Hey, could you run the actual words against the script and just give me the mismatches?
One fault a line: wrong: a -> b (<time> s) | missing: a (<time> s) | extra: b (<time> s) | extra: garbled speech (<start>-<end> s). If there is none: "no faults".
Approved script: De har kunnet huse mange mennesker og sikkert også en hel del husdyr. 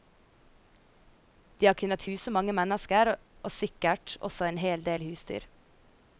no faults